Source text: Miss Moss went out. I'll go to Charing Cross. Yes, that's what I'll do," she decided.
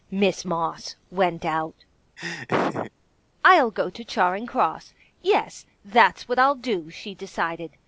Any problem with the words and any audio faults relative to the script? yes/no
yes